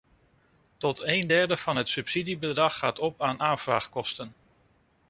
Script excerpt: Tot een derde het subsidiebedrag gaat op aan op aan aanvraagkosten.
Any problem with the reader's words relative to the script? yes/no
yes